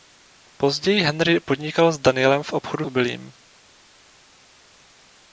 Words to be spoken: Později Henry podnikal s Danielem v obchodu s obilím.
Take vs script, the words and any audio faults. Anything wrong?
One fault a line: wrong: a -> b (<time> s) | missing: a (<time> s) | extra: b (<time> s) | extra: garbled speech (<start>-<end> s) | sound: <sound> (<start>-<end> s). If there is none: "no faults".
missing: s (2.9 s)